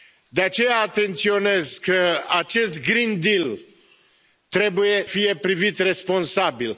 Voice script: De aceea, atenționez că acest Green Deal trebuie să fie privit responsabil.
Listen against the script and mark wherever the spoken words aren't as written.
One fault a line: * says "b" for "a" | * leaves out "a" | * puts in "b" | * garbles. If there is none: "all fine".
* leaves out "să"